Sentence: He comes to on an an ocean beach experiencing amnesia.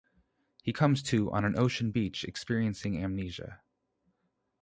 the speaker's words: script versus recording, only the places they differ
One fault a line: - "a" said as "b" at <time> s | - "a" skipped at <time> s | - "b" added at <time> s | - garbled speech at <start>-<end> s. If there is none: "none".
- "an" skipped at 1.6 s